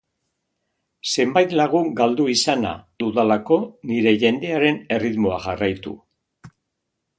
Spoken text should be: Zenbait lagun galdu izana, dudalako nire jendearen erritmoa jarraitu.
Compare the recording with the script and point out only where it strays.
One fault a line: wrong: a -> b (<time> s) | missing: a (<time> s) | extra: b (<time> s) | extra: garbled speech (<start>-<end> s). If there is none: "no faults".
no faults